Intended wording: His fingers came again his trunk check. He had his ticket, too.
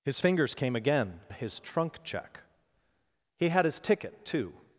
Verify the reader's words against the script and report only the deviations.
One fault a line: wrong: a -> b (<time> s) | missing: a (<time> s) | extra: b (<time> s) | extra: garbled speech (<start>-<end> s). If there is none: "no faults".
no faults